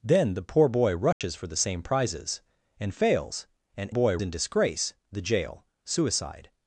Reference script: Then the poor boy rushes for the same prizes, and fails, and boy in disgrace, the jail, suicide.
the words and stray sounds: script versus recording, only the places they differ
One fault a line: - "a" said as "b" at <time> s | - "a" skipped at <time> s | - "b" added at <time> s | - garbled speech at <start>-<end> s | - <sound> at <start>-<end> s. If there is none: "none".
- dropout at 1.1-1.2 s